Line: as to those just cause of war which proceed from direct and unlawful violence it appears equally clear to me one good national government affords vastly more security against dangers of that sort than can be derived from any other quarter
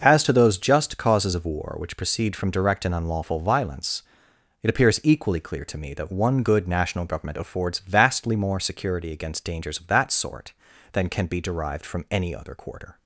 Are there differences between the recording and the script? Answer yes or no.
yes